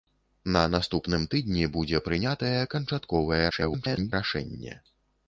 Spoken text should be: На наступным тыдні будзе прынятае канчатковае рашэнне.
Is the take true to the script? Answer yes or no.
no